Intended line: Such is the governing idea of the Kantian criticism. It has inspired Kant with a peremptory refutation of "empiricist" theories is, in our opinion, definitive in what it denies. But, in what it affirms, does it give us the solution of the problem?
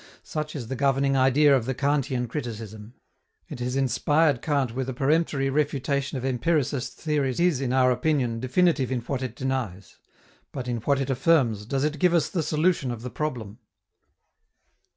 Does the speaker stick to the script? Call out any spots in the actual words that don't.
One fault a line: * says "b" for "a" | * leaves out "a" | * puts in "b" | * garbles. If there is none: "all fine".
all fine